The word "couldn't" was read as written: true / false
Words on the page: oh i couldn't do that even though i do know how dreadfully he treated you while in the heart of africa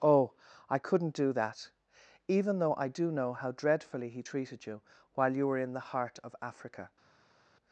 true